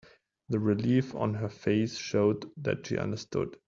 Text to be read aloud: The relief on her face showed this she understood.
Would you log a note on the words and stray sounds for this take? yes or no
yes